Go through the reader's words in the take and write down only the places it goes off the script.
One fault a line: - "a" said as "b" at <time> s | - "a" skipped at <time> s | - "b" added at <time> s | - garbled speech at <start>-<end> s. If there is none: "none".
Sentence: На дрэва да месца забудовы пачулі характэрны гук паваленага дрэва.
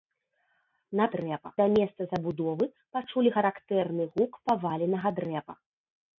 none